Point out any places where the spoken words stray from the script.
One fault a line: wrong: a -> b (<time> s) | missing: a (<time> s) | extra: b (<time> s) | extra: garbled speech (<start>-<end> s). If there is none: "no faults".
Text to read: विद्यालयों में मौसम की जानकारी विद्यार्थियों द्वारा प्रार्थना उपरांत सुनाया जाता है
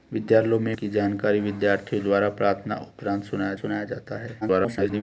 missing: मौसम (0.7 s)
extra: सुनाया (3.6 s)
extra: garbled speech (4.4-5.0 s)